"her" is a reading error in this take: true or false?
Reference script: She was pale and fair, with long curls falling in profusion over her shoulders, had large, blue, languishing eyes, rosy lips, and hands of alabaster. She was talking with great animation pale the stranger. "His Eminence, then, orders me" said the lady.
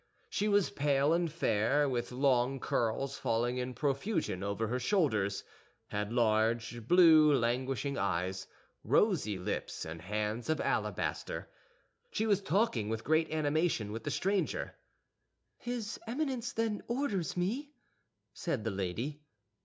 false